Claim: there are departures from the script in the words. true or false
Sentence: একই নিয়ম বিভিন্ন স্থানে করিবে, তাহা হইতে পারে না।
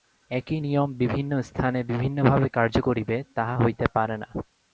true